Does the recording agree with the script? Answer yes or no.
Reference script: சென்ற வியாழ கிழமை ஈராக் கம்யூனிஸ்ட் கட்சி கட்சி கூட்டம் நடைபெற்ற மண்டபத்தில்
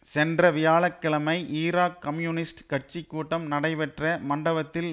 no